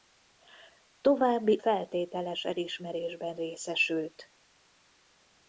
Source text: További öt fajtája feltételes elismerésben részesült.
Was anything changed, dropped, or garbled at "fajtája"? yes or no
yes